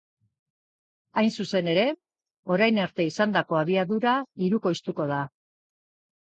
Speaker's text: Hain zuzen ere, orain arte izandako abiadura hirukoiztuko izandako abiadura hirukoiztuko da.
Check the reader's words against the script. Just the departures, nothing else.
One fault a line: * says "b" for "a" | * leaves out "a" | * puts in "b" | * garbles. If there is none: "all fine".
* leaves out "izandako abiadura hirukoiztuko"